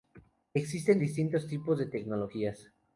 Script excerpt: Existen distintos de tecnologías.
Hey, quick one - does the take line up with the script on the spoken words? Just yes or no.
no